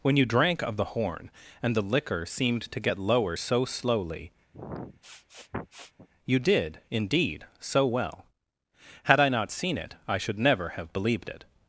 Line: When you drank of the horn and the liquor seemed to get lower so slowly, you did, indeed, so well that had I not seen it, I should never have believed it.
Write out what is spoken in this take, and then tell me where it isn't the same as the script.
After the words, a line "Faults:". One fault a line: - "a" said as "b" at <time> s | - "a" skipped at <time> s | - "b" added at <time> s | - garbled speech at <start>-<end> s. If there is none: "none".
When you drank of the horn and the liquor seemed to get lower so slowly, you did, indeed, so well had I not seen it, I should never have believed it.
Faults:
- "that" skipped at 8.2 s